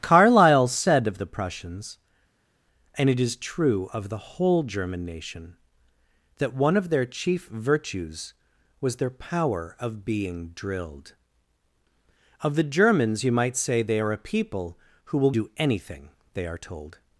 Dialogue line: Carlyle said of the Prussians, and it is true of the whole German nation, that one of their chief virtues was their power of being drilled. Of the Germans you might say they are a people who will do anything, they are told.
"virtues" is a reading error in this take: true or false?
false